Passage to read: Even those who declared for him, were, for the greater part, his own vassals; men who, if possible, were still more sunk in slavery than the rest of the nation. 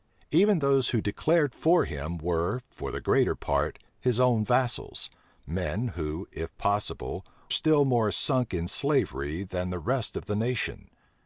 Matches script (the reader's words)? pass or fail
fail